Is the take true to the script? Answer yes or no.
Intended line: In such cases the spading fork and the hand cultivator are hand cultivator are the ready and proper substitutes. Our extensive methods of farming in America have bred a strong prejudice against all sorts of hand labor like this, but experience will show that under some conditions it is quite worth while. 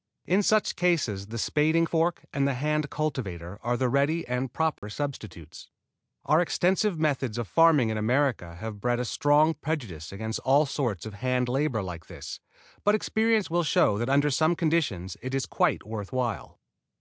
no